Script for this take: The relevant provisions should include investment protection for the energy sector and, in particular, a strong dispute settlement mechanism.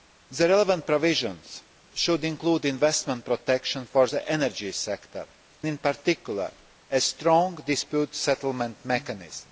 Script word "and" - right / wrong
wrong